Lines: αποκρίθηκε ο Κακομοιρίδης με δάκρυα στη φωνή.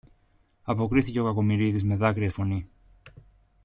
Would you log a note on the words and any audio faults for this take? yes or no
yes